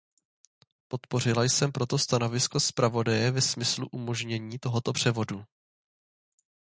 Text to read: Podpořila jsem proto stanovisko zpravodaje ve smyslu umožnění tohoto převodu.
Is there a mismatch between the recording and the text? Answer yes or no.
no